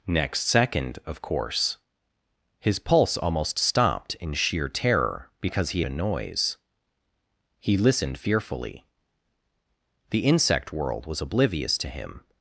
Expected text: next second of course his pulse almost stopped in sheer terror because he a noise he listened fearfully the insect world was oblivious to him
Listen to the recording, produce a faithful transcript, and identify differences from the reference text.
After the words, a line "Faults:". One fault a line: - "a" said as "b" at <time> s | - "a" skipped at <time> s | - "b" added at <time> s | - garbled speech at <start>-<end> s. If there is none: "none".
next second of course his pulse almost stopped in sheer terror because he a noise he listened fearfully the insect world was oblivious to him
Faults:
none